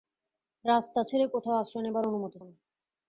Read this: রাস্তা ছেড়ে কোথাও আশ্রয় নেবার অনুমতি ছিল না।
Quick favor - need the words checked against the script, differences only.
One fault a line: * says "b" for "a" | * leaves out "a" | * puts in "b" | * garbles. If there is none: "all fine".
* leaves out "ছিল"